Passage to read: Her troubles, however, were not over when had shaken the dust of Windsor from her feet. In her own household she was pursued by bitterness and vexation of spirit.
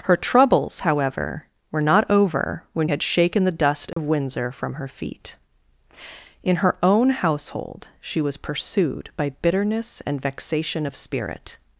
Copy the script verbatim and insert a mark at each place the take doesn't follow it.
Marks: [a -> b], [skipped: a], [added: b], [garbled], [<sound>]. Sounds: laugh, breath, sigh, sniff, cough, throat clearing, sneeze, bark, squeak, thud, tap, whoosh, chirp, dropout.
Her troubles, however, were not over when had shaken the dust of [dropout] Windsor from her feet. In her own household she was pursued by bitterness and vexation of spirit.